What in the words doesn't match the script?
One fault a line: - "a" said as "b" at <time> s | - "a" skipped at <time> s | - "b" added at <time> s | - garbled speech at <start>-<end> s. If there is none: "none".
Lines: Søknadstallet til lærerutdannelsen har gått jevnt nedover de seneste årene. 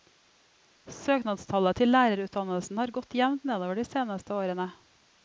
none